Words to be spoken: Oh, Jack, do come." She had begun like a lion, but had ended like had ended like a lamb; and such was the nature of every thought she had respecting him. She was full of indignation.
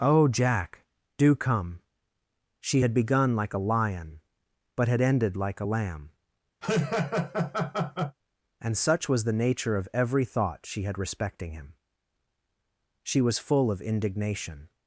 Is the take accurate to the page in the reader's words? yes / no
no